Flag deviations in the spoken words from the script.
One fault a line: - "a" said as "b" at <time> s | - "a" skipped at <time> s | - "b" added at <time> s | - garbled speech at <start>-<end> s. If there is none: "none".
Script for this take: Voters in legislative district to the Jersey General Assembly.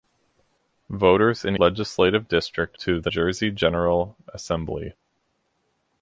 none